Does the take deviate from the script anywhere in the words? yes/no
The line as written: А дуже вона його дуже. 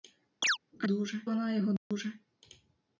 no